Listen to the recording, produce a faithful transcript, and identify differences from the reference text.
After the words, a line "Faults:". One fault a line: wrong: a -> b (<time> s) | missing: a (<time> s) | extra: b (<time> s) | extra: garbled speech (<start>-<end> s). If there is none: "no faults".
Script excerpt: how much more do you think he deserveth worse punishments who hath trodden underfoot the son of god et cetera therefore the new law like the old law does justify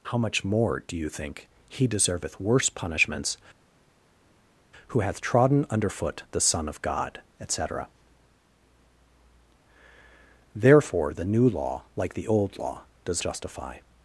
how much more do you think he deserveth worse punishments who hath trodden underfoot the son of god et cetera therefore the new law like the old law does justify
Faults:
no faults